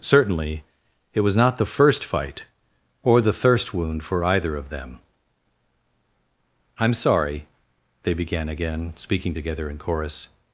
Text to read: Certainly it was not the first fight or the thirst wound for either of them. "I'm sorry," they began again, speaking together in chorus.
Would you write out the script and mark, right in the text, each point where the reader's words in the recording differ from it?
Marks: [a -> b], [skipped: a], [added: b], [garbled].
Certainly it was not the first fight or the thirst wound for either of them. "I'm sorry," they began again, speaking together in chorus.